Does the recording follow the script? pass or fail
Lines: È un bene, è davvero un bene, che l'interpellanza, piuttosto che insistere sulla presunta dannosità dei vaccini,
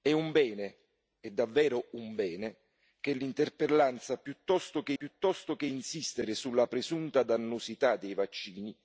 fail